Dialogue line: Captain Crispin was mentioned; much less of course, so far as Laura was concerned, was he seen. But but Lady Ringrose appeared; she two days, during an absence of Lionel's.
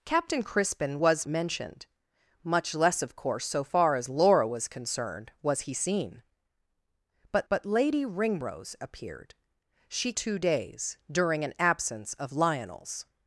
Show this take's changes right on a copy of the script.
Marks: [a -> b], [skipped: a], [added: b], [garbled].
Captain Crispin was mentioned; much less of course, so far as Laura was concerned, was he seen. But but Lady Ringrose appeared; she two days, during an absence of Lionel's.